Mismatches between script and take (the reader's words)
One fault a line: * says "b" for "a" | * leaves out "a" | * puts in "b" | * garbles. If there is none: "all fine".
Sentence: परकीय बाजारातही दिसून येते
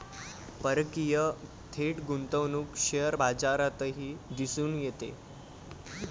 * puts in "थेट गुंतवणूक शेअर"